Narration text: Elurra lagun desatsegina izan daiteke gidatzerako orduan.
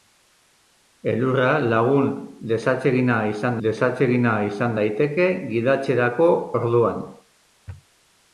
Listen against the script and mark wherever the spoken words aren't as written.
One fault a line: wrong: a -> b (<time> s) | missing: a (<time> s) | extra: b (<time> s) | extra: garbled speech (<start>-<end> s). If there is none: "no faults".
extra: desatsegina izan (3.7 s)